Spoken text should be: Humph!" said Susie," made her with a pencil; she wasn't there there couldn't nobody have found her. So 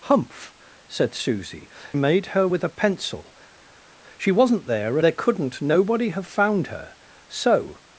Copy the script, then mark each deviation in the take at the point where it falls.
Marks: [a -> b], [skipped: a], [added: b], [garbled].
Humph!" said Susie," made her with a pencil; she wasn't there there couldn't nobody have found her. So